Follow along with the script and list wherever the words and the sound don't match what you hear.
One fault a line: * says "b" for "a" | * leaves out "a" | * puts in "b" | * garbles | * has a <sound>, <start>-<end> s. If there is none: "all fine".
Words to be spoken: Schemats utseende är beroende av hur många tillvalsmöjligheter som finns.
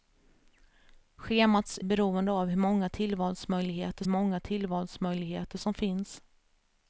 * leaves out "utseende"
* puts in "många tillvalsmöjligheter"